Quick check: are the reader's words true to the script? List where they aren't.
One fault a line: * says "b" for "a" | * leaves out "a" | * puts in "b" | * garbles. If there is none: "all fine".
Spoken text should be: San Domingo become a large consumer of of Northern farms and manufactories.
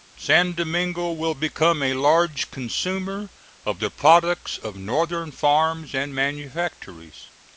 * puts in "will"
* puts in "the products"